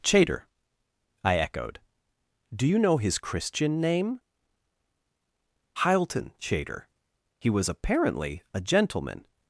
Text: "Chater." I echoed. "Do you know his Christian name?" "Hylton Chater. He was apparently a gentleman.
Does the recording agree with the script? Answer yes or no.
yes